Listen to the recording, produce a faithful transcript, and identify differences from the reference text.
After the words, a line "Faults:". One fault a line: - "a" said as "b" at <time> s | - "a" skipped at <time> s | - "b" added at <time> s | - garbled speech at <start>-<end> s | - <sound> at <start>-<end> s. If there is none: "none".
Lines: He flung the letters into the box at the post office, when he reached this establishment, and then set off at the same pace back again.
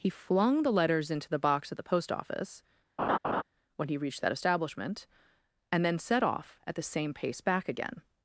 He flung the letters into the box at the post office, when he reached that establishment, and then set off at the same pace back again.
Faults:
- laugh at 3.0-3.4 s
- "this" said as "that" at 4.2 s